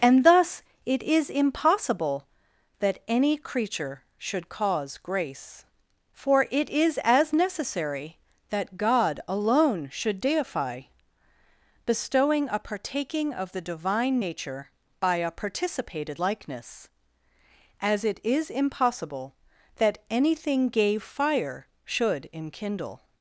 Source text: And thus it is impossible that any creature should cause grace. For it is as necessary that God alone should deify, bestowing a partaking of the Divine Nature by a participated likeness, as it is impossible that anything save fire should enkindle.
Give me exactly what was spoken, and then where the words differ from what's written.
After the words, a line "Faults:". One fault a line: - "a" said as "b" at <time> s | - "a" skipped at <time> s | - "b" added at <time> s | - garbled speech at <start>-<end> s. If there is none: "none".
And thus it is impossible that any creature should cause grace. For it is as necessary that God alone should deify, bestowing a partaking of the Divine Nature by a participated likeness, as it is impossible that anything gave fire should enkindle.
Faults:
- "save" said as "gave" at 20.7 s